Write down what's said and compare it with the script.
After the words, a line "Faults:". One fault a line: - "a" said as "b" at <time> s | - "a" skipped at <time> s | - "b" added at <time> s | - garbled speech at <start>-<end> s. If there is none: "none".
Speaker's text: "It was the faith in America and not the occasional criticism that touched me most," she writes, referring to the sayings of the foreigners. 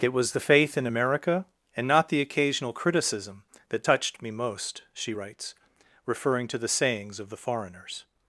"It was the faith in America and not the occasional criticism that touched me most," she writes, referring to the sayings of the foreigners.
Faults:
none